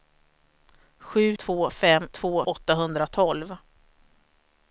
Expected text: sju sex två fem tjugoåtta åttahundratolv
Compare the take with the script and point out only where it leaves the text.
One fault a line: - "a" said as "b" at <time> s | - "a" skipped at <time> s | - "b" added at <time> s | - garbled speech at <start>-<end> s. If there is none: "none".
- "sex" skipped at 1.4 s
- "tjugoåtta" said as "två" at 2.1 s